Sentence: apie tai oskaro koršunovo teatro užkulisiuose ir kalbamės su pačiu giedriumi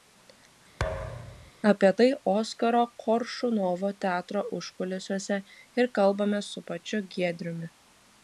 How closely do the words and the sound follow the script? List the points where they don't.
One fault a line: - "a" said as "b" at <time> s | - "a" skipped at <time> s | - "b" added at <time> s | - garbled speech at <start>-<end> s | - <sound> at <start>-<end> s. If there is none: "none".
- thud at 0.8-1.5 s